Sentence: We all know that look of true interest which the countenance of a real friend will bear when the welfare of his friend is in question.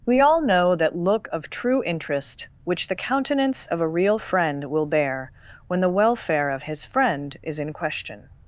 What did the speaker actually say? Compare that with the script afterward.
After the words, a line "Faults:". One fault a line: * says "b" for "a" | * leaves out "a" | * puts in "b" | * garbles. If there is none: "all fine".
We all know that look of true interest which the countenance of a real friend will bear when the welfare of his friend is in question.
Faults:
all fine